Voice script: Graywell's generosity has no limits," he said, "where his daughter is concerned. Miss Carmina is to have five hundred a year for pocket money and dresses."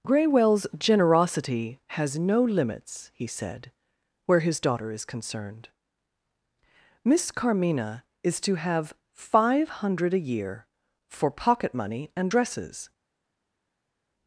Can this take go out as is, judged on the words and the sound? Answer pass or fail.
pass